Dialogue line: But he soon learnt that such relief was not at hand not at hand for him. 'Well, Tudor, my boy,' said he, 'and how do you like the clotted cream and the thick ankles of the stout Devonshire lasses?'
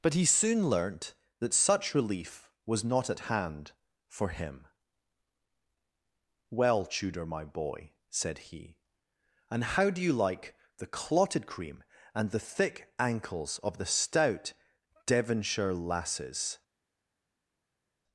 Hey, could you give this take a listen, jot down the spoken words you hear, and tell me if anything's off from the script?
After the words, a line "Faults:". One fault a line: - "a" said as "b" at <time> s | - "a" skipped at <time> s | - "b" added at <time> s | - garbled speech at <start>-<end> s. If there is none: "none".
But he soon learnt that such relief was not at hand for him. 'Well, Tudor, my boy,' said he, 'and how do you like the clotted cream and the thick ankles of the stout Devonshire lasses?'
Faults:
- "not at hand" skipped at 3.7 s